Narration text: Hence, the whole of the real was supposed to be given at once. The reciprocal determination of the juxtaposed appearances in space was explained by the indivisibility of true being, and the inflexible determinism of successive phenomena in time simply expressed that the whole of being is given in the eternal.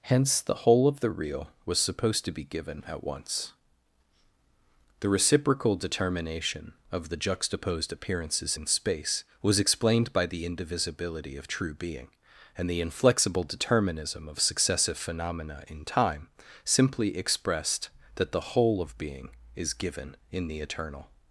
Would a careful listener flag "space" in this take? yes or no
no